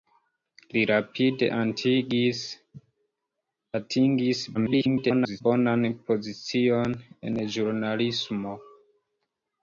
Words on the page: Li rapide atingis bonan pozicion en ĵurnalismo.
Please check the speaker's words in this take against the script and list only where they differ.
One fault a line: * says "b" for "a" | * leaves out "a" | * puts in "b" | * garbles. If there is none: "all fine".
* garbles